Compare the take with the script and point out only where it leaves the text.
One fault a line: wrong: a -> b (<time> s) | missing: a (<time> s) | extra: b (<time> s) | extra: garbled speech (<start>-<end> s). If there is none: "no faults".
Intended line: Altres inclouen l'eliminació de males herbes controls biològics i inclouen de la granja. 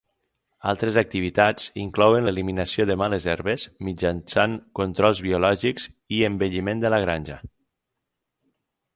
extra: activitats (1.0 s)
extra: mitjançant (3.9 s)
wrong: inclouen -> embelliment (6.3 s)